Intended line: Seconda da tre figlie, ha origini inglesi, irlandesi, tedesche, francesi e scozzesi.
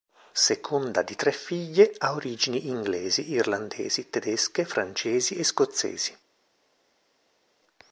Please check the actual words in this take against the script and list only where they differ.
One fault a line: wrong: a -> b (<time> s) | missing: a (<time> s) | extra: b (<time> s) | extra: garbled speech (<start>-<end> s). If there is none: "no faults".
wrong: da -> di (1.0 s)